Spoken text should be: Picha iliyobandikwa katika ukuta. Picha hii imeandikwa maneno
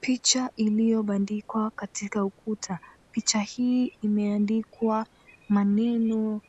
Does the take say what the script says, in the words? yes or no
yes